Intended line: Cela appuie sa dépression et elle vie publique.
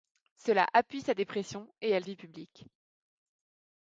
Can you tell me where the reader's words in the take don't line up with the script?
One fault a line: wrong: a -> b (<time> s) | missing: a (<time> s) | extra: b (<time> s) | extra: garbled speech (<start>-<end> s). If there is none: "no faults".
no faults